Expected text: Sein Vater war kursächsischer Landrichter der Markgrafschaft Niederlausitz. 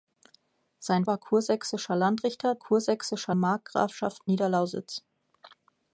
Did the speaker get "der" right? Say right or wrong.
wrong